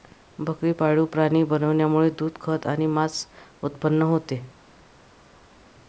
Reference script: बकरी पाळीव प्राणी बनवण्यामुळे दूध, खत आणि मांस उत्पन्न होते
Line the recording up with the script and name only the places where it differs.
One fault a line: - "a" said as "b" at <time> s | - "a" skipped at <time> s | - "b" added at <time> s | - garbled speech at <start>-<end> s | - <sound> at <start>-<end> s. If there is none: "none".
none